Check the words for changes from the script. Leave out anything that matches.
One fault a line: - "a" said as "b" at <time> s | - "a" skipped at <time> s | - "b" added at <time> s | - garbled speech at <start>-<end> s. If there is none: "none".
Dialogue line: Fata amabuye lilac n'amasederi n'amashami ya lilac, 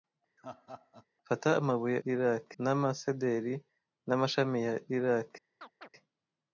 none